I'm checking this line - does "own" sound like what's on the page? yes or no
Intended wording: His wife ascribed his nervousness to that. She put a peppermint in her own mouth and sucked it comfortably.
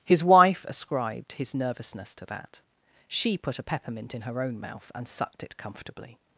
yes